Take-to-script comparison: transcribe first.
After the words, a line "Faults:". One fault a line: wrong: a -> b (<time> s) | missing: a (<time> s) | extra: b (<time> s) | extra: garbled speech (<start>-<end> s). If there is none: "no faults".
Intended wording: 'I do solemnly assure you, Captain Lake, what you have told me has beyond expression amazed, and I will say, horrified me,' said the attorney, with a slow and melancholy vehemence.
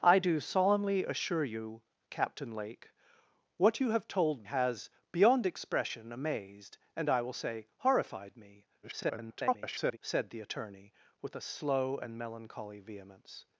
'I do solemnly assure you, Captain Lake, what you have told has beyond expression amazed, and I will say, horrified me,' [garbled] said the attorney, with a slow and melancholy vehemence.
Faults:
missing: me (4.5 s)
extra: garbled speech (8.8-10.0 s)